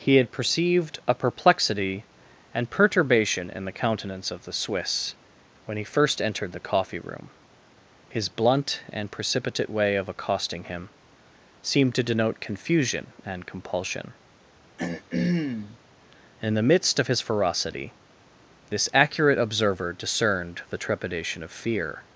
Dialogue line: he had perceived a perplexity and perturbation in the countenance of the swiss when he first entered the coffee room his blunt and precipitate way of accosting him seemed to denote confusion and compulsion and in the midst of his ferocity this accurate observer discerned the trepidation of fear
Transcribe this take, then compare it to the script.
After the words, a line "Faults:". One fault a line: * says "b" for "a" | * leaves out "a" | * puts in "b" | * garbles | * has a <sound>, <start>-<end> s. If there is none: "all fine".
he had perceived a perplexity and perturbation in the countenance of the swiss when he first entered the coffee room his blunt and precipitate way of accosting him seemed to denote confusion and compulsion in the midst of his ferocity this accurate observer discerned the trepidation of fear
Faults:
* leaves out "and"
* has a throat clearing, 14.8-15.8 s